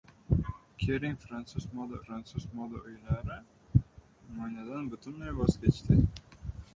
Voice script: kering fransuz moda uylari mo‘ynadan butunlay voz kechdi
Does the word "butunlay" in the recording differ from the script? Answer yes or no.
no